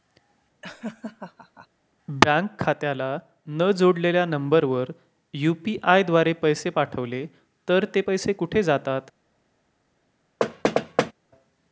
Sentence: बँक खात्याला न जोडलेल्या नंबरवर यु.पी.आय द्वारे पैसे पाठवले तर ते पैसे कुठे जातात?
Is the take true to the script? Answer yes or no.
yes